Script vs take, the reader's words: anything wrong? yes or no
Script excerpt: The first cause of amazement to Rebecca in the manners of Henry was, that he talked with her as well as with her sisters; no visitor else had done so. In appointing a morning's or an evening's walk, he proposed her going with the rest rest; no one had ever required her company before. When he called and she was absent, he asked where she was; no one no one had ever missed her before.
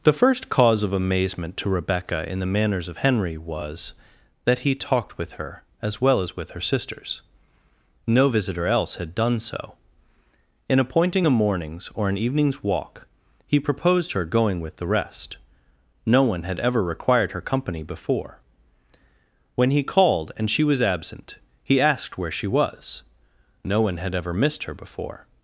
yes